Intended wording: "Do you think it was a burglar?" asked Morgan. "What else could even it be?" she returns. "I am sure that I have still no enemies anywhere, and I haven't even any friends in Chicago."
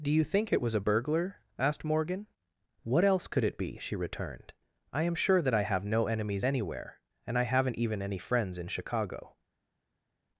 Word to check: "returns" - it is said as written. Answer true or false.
false